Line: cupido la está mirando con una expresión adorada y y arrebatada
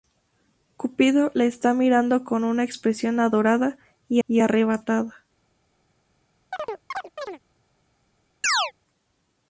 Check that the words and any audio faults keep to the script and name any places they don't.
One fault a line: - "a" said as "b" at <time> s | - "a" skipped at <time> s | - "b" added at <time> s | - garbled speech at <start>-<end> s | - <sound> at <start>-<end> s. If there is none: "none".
- chirp at 6.5-7.4 s
- chirp at 8.4-8.7 s